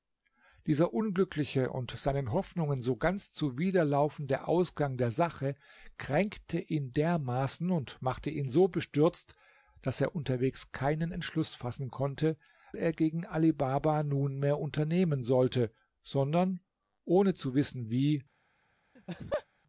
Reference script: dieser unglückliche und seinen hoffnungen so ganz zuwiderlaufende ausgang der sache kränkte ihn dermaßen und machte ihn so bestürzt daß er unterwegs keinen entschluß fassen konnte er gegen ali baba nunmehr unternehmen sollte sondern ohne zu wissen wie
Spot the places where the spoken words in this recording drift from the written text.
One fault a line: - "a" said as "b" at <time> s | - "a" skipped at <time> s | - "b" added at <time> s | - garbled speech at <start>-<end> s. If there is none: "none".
none